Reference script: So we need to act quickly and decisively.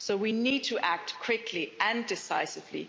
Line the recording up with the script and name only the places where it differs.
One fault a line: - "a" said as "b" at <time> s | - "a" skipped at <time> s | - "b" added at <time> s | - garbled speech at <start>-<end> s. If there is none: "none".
none